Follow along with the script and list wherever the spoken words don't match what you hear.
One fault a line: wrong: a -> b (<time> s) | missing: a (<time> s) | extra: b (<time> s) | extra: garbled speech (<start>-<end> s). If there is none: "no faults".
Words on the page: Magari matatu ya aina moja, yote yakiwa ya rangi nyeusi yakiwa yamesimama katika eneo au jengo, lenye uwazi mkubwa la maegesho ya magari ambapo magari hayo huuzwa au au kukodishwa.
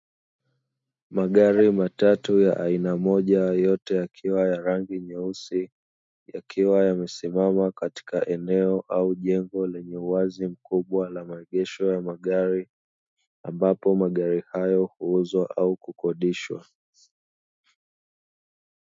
missing: au (15.8 s)